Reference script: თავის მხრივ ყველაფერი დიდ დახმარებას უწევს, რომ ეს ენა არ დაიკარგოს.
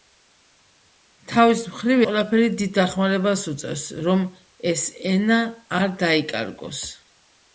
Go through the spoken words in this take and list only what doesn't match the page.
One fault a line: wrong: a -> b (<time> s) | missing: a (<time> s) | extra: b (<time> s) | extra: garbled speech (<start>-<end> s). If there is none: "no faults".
no faults